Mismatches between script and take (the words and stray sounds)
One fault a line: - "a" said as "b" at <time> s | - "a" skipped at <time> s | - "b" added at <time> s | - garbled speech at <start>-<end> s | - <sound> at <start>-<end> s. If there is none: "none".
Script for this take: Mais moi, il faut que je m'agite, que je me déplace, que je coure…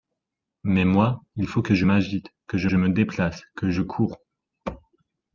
- "je" added at 2.6 s